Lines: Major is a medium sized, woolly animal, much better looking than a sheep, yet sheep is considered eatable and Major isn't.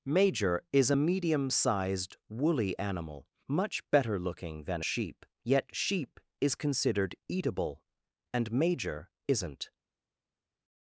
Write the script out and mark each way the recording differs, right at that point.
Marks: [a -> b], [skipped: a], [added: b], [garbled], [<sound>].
Major is a medium sized, woolly animal, much better looking than a sheep, yet sheep is considered eatable and Major isn't.